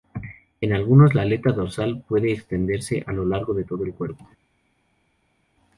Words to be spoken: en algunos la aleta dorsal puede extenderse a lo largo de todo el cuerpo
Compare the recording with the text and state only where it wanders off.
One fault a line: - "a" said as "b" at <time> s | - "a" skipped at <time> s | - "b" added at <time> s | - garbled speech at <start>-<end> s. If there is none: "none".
none